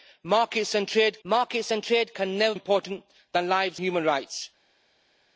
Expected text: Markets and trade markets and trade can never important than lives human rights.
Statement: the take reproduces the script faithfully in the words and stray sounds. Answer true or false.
true